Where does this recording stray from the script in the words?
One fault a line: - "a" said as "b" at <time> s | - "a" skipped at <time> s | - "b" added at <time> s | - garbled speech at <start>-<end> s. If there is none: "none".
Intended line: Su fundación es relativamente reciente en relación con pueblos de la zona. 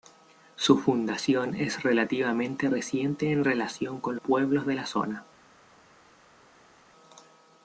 none